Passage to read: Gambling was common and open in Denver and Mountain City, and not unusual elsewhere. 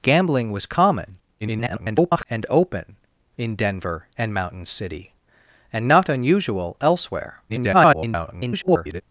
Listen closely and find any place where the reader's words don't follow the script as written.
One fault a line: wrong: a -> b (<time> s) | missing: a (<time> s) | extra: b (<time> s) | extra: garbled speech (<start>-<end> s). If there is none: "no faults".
extra: garbled speech (1.4-2.3 s)
extra: garbled speech (7.5-9.0 s)